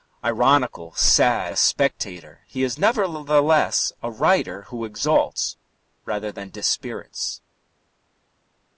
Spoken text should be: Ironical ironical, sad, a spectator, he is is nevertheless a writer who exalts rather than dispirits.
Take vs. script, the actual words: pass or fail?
fail